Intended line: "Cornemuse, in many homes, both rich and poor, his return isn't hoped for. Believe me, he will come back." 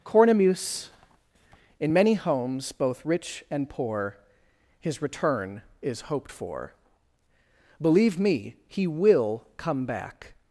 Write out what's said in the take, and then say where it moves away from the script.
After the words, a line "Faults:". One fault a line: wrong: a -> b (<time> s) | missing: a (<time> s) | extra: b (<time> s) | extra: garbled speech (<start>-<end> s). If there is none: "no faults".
"Cornemuse, in many homes, both rich and poor, his return is hoped for. Believe me, he will come back."
Faults:
wrong: isn't -> is (5.8 s)